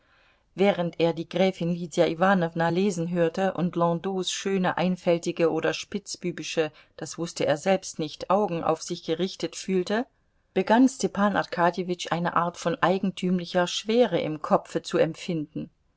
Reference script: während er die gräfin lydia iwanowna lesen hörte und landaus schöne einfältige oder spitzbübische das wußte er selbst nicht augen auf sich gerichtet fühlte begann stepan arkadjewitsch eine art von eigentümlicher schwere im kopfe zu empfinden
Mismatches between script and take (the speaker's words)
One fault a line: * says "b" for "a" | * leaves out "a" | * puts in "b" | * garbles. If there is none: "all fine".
all fine